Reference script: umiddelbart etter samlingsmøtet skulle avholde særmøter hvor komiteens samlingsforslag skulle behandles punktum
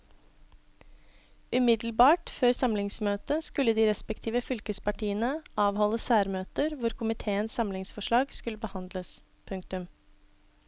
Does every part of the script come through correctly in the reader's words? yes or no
no